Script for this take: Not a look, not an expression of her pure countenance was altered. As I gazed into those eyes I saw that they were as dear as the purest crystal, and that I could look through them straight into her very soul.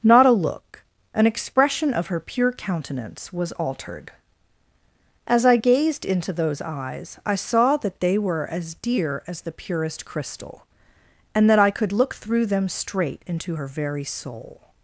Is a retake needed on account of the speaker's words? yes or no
yes